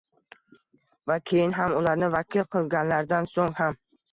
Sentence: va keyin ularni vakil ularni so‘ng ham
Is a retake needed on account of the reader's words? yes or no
yes